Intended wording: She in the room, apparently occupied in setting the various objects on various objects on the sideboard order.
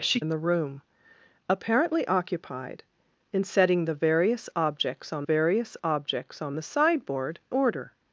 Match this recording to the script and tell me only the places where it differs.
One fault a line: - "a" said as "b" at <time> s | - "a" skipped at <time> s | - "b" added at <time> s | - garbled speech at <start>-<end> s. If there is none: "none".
none